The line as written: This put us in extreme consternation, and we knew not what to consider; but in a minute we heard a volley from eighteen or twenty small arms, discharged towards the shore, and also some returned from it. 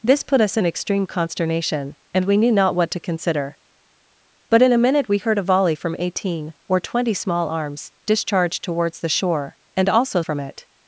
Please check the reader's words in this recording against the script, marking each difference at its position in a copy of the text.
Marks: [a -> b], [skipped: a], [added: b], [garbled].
This put us in extreme consternation, and we knew not what to consider; but in a minute we heard a volley from eighteen or twenty small arms, discharged towards the shore, and also [skipped: some returned] from it.